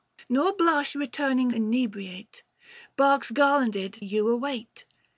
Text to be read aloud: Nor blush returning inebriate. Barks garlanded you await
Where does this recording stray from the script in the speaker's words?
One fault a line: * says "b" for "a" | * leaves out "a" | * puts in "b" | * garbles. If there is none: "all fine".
all fine